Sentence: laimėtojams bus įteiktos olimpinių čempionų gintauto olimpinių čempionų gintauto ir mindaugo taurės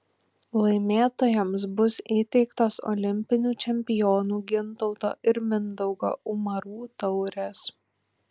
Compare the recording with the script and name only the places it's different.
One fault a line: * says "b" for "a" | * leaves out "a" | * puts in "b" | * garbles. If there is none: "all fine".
* leaves out "olimpinių čempionų gintauto"
* puts in "umarų"